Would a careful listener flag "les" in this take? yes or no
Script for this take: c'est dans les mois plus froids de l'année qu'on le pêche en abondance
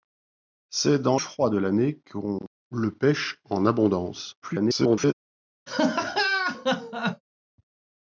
yes